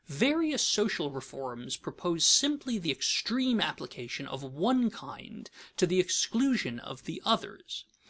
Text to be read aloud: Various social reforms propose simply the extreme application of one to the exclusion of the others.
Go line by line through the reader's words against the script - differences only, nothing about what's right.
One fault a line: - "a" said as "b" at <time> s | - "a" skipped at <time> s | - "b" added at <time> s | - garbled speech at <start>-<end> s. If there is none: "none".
- "kind" added at 4.9 s